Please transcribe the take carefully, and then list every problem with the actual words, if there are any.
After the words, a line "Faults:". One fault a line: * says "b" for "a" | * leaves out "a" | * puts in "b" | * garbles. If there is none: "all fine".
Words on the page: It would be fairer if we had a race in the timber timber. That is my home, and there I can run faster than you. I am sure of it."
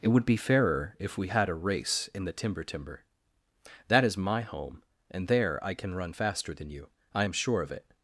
It would be fairer if we had a race in the timber timber. That is my home, and there I can run faster than you. I am sure of it."
Faults:
all fine